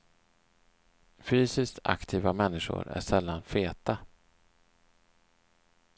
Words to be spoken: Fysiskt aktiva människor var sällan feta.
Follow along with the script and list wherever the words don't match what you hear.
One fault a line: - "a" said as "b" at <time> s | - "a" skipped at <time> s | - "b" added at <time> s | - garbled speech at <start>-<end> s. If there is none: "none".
- "var" said as "är" at 2.9 s